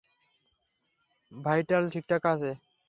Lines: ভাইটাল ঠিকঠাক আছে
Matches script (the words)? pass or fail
pass